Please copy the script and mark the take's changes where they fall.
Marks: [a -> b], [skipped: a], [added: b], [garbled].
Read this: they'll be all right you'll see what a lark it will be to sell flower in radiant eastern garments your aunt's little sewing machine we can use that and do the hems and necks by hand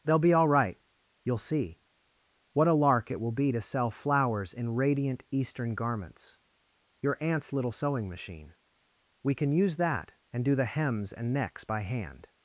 they'll be all right you'll see what a lark it will be to sell [flower -> flowers] in radiant eastern garments your aunt's little sewing machine we can use that and do the hems and necks by hand